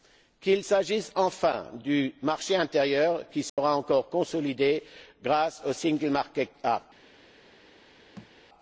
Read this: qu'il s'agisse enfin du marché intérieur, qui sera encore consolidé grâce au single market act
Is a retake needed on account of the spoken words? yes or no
no